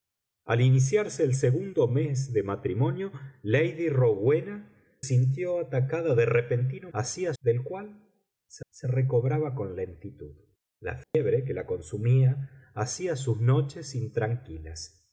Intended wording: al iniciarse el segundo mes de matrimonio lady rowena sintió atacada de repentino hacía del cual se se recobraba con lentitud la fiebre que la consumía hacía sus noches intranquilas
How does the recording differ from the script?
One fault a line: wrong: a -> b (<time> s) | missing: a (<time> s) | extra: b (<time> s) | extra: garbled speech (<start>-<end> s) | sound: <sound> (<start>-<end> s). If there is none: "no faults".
sound: dropout (11.0-11.1 s)